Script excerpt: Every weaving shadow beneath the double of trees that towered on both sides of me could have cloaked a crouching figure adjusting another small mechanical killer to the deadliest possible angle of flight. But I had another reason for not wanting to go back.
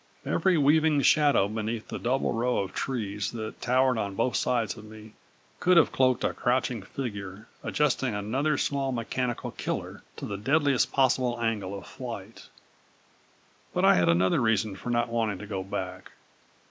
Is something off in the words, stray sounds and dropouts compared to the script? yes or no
yes